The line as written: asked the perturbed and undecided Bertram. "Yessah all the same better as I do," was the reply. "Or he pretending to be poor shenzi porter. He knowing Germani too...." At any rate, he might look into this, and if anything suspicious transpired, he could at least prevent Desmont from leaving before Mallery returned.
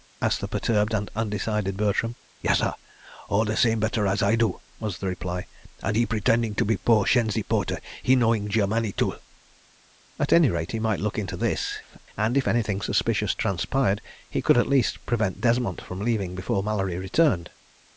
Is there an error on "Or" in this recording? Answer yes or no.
yes